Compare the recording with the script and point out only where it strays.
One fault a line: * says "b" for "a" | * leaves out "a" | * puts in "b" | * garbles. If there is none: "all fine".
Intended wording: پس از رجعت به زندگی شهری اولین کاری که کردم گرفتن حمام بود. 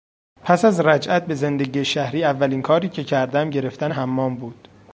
all fine